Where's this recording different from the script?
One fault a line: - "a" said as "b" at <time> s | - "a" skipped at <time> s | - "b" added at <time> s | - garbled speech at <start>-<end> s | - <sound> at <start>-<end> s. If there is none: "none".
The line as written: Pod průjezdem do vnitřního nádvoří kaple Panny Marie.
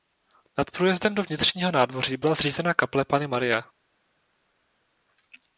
- "Pod" said as "Nad" at 0.6 s
- "byla zřízena" added at 2.2 s